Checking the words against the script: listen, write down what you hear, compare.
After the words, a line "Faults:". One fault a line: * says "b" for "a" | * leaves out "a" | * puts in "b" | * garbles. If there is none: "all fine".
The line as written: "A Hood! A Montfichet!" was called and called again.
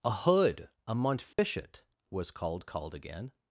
"A Hood! A Montfichet!" was called called again.
Faults:
* leaves out "and"